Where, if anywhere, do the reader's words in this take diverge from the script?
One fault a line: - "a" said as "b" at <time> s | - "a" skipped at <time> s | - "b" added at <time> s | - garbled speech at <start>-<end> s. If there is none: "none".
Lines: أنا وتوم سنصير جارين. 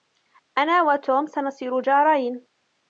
none